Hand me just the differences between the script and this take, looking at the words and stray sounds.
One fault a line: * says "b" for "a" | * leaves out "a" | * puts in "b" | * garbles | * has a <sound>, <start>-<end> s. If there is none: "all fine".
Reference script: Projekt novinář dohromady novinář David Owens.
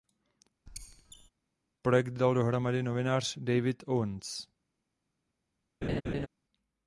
* has a squeak, 0.7-1.3 s
* says "dal" for "novinář"
* has a laugh, 5.8-6.3 s